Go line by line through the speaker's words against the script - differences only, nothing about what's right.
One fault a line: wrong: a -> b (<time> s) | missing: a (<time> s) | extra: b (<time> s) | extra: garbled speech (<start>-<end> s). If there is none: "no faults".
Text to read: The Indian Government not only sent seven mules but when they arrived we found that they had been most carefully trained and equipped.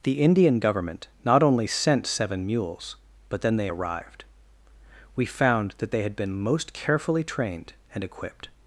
wrong: when -> then (3.4 s)